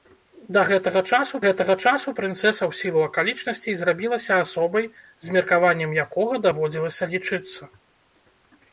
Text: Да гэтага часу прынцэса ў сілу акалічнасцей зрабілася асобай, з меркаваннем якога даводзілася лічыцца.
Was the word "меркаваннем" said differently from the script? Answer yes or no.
no